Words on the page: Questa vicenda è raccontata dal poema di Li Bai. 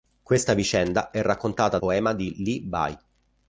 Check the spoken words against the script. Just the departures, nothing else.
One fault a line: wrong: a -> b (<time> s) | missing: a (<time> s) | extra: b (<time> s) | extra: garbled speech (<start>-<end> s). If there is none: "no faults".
missing: dal (1.8 s)